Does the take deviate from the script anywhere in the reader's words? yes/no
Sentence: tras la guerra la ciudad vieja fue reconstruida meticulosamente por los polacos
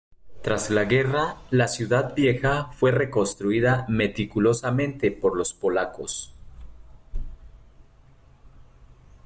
no